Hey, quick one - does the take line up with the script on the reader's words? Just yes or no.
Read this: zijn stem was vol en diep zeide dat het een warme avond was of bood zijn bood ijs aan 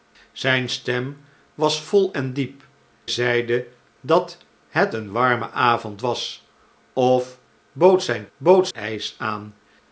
yes